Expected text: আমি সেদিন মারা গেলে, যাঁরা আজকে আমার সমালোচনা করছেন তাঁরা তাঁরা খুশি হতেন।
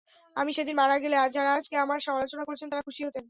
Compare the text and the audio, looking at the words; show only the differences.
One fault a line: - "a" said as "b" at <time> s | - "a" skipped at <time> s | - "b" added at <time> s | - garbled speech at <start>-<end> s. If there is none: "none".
- "তাঁরা" skipped at 2.9 s